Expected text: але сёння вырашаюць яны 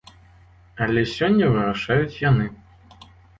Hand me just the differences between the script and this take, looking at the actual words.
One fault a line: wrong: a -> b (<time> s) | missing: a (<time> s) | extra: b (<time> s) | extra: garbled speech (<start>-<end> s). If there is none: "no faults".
no faults